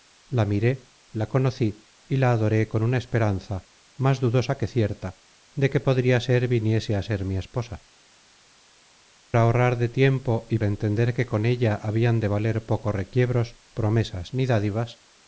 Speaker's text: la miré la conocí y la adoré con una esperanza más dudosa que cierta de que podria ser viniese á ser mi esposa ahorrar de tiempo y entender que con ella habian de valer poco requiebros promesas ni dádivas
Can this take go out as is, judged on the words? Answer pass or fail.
pass